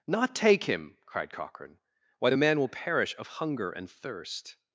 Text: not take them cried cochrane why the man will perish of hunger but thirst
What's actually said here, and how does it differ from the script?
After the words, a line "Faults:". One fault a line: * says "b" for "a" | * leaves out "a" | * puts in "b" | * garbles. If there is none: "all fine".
not take him cried cochrane why the man will perish of hunger and thirst
Faults:
* says "him" for "them"
* says "and" for "but"